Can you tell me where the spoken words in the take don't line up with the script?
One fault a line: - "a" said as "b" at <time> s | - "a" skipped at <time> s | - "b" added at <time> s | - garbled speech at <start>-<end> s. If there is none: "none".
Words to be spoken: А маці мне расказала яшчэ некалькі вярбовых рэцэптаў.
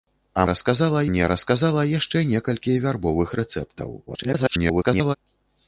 - "маці" said as "расказала" at 0.5 s
- garbled speech at 4.1-5.2 s